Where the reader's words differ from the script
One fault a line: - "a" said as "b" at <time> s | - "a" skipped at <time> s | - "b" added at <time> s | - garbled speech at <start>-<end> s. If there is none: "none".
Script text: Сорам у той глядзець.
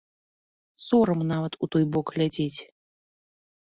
- "нават" added at 1.3 s
- "бок" added at 1.9 s